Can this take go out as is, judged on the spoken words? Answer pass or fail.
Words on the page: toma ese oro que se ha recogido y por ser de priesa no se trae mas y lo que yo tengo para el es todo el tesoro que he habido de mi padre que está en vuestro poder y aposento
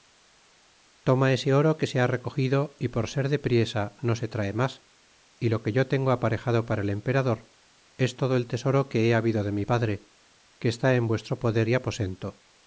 fail